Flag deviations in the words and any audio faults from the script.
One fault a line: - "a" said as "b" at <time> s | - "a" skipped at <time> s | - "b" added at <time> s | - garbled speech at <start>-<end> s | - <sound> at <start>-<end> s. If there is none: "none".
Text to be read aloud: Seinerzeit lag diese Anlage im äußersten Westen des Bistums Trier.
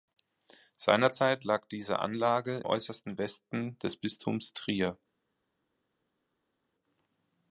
- "im" skipped at 2.6 s